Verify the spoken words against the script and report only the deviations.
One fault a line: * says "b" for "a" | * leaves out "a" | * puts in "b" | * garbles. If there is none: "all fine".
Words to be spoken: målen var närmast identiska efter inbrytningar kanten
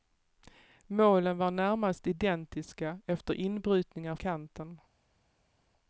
all fine